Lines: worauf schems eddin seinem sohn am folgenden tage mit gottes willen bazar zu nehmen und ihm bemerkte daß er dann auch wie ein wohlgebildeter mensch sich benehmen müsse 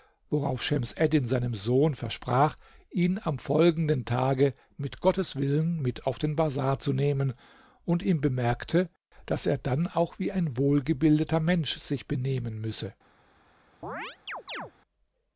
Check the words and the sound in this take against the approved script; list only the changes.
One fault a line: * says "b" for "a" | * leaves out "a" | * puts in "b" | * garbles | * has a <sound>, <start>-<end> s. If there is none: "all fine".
* puts in "versprach ihn"
* puts in "mit auf den"
* has a chirp, 13.8-14.7 s